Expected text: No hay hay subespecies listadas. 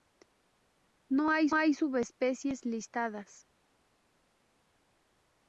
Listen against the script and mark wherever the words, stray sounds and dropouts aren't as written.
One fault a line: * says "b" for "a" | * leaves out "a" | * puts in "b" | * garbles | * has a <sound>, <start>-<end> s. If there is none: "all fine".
all fine